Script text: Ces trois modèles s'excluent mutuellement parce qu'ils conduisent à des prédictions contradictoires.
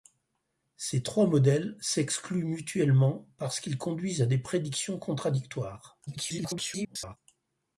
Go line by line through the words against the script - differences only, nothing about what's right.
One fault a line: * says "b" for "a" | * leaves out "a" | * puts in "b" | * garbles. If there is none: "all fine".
* garbles